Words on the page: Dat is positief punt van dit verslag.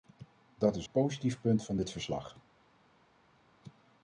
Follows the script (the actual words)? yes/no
yes